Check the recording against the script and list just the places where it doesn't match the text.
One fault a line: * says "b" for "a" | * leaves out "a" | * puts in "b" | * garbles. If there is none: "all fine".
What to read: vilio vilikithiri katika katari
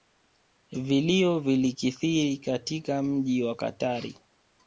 * puts in "mji wa"